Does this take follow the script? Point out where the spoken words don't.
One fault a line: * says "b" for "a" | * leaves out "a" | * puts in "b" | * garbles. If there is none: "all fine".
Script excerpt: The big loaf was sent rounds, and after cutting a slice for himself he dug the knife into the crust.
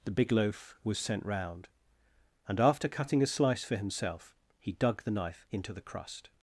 * says "round" for "rounds"